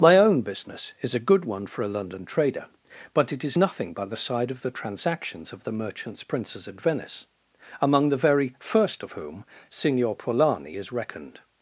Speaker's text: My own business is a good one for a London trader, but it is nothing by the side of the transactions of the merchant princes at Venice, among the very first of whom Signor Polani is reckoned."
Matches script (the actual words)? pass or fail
fail